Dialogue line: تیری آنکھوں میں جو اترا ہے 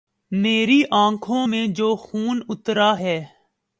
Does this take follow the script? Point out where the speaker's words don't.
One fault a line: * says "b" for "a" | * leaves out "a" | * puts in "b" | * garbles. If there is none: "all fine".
* says "میری" for "تیری"
* puts in "خون"